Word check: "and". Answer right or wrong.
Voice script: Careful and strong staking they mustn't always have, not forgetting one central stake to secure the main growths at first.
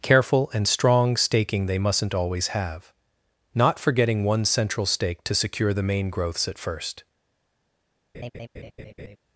right